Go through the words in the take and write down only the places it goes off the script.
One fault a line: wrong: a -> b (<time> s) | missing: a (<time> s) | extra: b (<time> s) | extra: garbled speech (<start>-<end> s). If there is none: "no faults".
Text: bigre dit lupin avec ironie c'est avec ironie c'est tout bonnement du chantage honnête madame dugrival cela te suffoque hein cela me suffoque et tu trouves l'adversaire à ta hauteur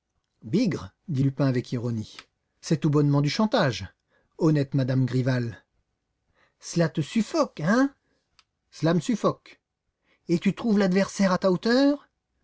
missing: avec ironie c'est (2.8 s)